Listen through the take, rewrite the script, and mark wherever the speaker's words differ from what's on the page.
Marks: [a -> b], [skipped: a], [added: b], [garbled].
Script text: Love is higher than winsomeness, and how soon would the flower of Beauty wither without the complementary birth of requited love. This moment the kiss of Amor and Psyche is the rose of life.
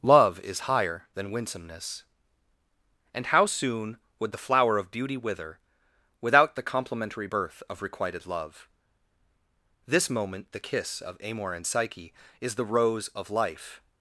Love is higher than winsomeness, and how soon would the flower of Beauty wither without the complementary birth of requited love. This moment the kiss of Amor and Psyche is the rose of life.